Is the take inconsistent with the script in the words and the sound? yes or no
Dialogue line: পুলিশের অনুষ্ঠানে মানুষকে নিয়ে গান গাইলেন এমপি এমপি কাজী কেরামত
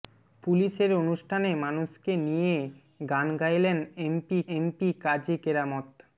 no